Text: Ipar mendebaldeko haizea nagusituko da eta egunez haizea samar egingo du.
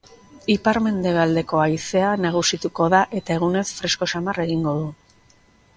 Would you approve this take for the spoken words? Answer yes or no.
no